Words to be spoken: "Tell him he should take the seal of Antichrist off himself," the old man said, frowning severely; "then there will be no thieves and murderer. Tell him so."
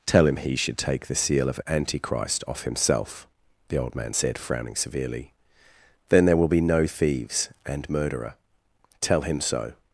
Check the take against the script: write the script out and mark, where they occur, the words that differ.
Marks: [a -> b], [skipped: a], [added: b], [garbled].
"Tell him he should take the seal of Antichrist off himself," the old man said, frowning severely; "then there will be no thieves and murderer. Tell him so."